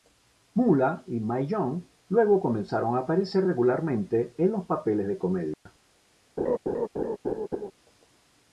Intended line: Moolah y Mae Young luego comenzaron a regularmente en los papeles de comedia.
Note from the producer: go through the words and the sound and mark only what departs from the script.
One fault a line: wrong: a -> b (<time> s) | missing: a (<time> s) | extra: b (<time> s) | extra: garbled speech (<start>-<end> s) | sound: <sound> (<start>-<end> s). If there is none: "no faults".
extra: aparecer (3.0 s)
sound: dropout (5.5-5.7 s)
sound: laugh (6.4-7.7 s)